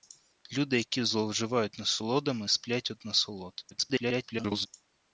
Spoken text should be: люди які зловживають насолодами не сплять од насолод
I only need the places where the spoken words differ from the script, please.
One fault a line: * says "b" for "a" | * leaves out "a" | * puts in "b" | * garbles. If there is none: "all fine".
* leaves out "не"
* garbles